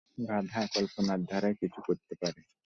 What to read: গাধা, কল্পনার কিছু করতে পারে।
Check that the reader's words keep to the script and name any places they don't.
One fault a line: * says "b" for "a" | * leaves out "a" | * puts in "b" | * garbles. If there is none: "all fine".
* puts in "ধারায়"